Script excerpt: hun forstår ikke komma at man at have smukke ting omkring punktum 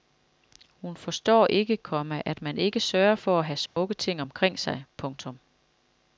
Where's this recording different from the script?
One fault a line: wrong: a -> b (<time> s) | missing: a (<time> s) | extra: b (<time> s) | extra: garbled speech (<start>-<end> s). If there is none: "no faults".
extra: ikke sørger for (2.6 s)
extra: sig (4.6 s)